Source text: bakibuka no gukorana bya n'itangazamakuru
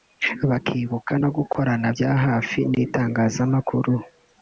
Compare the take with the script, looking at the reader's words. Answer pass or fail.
fail